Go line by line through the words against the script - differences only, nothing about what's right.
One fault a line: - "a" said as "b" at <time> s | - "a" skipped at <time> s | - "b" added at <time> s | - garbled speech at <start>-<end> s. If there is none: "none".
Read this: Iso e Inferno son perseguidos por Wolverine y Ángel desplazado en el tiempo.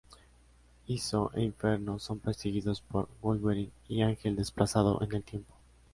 none